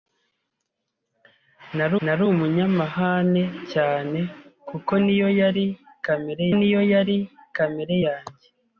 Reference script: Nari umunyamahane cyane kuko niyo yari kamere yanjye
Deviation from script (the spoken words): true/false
true